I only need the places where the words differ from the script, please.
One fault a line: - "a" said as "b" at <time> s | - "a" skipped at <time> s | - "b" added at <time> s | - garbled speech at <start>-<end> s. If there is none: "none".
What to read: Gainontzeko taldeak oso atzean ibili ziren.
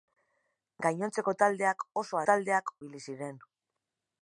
- "atzean" said as "taldeak" at 2.3 s